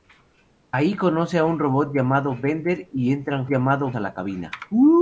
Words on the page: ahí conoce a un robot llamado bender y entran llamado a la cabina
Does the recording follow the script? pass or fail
pass